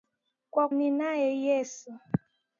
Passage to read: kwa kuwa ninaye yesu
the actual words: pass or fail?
fail